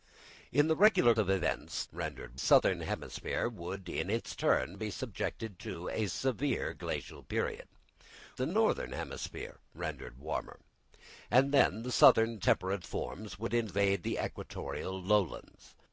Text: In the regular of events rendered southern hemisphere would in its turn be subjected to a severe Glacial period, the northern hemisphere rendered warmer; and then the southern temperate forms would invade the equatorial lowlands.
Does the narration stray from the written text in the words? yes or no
no